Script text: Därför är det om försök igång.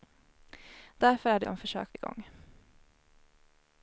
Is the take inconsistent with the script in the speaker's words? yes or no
no